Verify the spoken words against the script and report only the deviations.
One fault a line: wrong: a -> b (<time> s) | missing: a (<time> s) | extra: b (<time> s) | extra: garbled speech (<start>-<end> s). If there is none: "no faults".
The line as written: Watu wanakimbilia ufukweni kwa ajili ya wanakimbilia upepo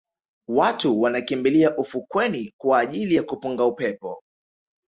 wrong: wanakimbilia -> kupunga (3.2 s)